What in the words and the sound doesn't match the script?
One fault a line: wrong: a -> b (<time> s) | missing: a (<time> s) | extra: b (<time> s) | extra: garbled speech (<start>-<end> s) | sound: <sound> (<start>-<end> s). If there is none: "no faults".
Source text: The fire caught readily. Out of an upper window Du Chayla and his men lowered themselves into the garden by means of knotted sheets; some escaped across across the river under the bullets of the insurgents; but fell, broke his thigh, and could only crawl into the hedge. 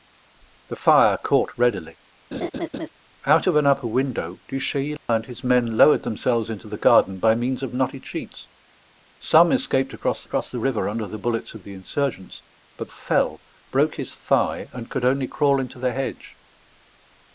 sound: laugh (2.3-2.9 s)
sound: dropout (5.0-5.1 s)